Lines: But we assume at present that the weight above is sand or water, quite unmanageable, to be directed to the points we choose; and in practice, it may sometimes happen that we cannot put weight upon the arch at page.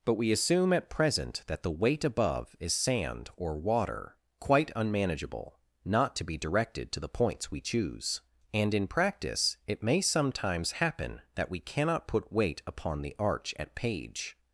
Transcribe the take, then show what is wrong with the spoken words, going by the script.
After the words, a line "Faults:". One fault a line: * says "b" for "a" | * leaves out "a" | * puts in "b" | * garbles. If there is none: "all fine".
But we assume at present that the weight above is sand or water, quite unmanageable, not to be directed to the points we choose; and in practice, it may sometimes happen that we cannot put weight upon the arch at page.
Faults:
* puts in "not"